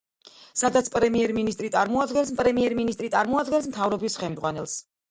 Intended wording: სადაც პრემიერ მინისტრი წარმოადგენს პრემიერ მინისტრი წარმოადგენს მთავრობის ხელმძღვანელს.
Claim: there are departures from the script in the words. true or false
false